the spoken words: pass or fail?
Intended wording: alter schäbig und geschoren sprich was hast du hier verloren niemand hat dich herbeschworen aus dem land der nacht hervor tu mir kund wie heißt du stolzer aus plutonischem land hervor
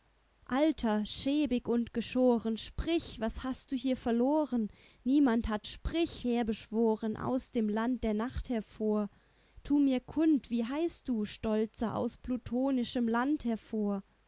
fail